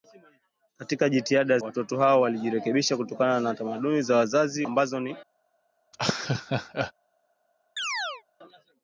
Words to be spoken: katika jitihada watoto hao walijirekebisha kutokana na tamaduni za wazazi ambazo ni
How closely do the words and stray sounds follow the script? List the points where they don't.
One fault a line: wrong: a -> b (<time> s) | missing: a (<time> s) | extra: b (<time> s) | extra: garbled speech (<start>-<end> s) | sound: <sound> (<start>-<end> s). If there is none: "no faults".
sound: laugh (5.9-6.9 s)
sound: chirp (7.8-8.2 s)